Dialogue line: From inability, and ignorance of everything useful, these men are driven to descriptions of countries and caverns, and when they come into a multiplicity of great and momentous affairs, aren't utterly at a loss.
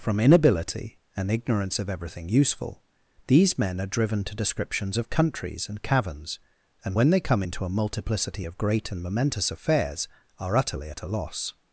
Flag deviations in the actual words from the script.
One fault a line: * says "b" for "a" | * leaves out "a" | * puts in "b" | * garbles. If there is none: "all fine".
* says "are" for "aren't"